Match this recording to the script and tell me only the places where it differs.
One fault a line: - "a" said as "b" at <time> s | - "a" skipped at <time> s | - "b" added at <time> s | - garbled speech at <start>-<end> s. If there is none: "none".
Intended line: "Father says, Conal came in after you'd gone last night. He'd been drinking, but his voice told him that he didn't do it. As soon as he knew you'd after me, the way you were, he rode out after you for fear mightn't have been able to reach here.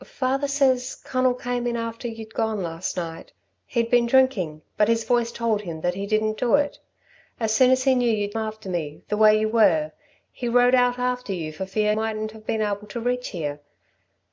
none